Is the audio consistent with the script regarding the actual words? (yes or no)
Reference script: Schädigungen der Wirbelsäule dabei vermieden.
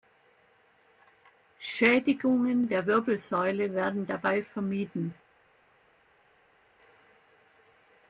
no